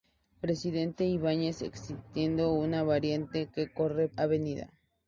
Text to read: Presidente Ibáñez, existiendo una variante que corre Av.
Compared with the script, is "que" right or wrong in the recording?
right